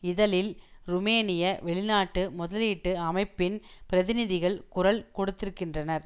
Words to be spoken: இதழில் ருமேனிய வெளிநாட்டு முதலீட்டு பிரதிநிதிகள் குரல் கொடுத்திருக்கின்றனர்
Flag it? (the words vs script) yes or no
yes